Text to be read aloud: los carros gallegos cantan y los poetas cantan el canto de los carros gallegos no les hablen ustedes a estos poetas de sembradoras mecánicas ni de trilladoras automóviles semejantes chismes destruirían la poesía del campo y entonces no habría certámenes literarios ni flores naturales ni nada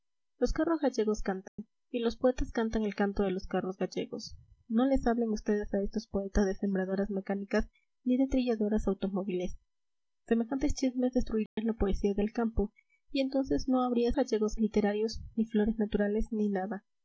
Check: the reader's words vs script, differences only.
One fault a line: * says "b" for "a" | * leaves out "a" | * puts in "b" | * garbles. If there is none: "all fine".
* says "gallegos" for "certámenes"